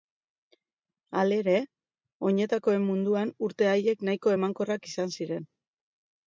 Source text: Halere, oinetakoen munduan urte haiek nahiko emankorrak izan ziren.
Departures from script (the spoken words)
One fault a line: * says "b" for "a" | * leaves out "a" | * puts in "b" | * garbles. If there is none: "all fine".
all fine